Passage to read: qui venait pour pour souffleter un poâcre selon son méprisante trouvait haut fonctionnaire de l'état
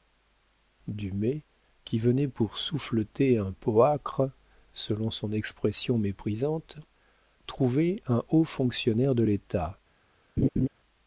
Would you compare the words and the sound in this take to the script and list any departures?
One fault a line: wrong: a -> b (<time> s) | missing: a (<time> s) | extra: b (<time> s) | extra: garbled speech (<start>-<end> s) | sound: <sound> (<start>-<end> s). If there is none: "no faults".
missing: pour (2.6 s)
extra: expression (5.3 s)
extra: un (8.1 s)
sound: laugh (10.4-10.7 s)